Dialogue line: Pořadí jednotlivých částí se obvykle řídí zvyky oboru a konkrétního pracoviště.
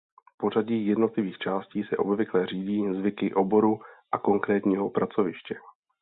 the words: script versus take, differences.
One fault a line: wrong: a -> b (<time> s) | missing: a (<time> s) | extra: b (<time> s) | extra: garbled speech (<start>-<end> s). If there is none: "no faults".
no faults